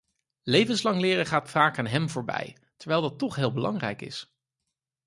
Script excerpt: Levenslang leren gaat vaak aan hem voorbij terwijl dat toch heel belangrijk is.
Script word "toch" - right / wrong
right